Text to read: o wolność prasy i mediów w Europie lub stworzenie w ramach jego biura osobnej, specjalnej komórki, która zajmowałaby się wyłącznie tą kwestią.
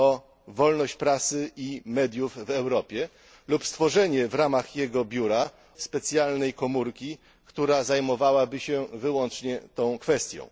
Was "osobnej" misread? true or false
true